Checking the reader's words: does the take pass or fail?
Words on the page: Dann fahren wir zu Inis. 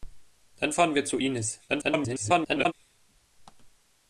fail